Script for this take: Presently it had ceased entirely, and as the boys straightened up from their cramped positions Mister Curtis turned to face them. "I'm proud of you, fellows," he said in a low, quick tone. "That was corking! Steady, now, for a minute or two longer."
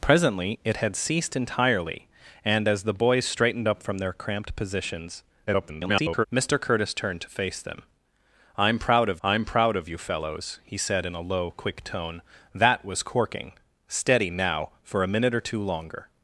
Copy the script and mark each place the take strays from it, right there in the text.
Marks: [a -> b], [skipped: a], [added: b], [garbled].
Presently it had ceased entirely, and as the boys straightened up from their cramped positions [garbled] Mister Curtis turned to face them. "I'm proud of [added: I'm proud of] you, fellows," he said in a low, quick tone. "That was corking! Steady, now, for a minute or two longer."